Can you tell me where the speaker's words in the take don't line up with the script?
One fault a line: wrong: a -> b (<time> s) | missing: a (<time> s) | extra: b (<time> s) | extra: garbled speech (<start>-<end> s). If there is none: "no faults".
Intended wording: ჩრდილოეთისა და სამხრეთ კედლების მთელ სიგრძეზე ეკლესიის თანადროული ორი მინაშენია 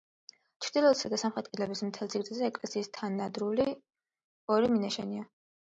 no faults